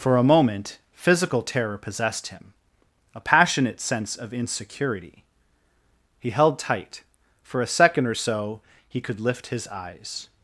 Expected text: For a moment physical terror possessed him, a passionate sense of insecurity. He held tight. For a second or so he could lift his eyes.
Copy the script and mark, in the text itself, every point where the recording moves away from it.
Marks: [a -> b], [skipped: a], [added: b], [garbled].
For a moment physical terror possessed him, a passionate sense of insecurity. He held tight. For a second or so he could lift his eyes.